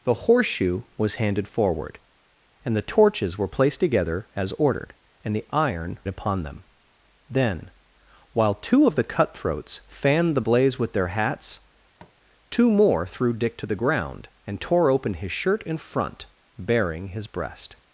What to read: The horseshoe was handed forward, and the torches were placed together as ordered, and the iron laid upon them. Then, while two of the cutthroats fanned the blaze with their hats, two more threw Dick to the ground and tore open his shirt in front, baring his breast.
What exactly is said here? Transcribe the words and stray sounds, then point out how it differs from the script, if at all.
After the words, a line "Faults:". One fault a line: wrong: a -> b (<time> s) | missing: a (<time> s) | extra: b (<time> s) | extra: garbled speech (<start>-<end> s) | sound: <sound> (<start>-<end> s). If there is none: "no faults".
The horseshoe was handed forward, and the torches were placed together as ordered, and the iron upon them. Then, while two of the cutthroats fanned the blaze with their hats, two more threw Dick to the ground and tore open his shirt in front, baring his breast.
Faults:
missing: laid (6.0 s)
sound: tap (12.0-12.2 s)